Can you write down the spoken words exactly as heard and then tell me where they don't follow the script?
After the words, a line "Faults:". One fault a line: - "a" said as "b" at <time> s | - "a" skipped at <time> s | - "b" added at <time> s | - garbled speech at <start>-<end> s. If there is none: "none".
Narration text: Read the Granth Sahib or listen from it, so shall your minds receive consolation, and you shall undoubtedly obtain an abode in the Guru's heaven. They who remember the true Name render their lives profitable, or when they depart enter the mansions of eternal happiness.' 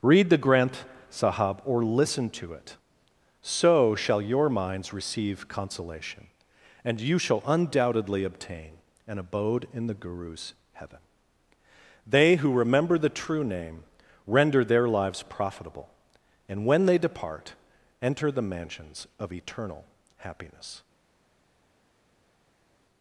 Read the Granth Sahib or listen to it, so shall your minds receive consolation, and you shall undoubtedly obtain an abode in the Guru's heaven. They who remember the true Name render their lives profitable, and when they depart enter the mansions of eternal happiness.'
Faults:
- "from" said as "to" at 2.3 s
- "or" said as "and" at 16.5 s